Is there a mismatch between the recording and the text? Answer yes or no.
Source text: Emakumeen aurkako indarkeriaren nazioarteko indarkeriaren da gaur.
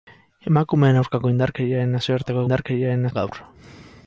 no